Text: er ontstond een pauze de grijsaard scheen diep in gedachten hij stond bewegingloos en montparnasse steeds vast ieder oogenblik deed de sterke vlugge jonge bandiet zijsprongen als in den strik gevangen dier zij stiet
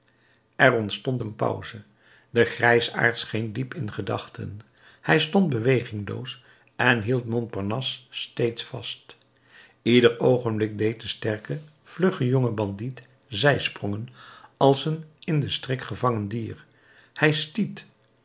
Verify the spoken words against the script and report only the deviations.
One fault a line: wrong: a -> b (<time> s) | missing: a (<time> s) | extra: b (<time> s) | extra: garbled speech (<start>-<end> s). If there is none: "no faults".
extra: hield (7.0 s)
extra: een (14.9 s)
wrong: zij -> hij (17.1 s)